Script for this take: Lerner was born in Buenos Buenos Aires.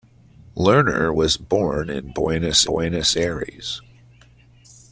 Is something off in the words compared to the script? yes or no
no